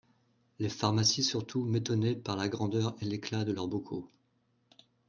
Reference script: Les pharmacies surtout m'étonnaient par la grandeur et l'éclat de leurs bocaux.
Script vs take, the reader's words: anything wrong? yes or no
no